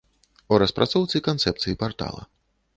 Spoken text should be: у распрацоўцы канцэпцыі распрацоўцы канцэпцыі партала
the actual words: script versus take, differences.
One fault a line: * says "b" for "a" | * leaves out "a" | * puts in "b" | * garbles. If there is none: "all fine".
* leaves out "распрацоўцы канцэпцыі"